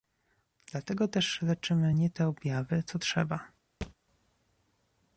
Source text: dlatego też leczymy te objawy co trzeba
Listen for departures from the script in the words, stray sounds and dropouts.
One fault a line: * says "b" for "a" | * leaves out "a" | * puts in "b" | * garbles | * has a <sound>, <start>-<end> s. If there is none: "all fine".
* puts in "nie"
* has a thud, 3.8-3.9 s